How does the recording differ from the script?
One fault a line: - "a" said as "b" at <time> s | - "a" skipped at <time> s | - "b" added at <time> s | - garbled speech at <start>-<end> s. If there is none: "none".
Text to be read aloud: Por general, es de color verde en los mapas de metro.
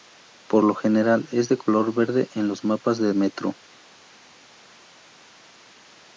- "lo" added at 0.6 s